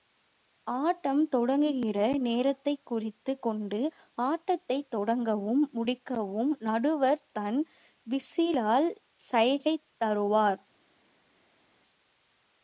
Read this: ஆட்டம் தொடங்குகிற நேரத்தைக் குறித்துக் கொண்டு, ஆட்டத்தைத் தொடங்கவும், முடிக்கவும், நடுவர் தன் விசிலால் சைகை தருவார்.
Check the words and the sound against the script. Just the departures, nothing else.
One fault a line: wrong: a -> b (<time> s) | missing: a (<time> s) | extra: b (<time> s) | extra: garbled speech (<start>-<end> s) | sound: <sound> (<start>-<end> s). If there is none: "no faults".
no faults